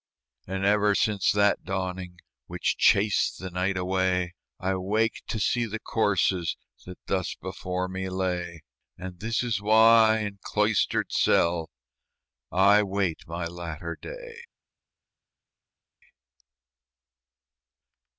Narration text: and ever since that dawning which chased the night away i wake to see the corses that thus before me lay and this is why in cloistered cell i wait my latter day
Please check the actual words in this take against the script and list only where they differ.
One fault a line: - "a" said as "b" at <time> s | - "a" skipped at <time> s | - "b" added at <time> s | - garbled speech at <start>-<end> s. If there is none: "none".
none